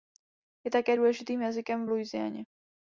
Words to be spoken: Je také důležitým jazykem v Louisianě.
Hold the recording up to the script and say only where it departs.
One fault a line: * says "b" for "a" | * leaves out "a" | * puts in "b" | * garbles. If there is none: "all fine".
all fine